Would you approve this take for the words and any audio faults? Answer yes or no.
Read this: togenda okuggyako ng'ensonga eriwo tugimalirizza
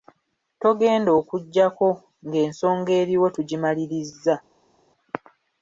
yes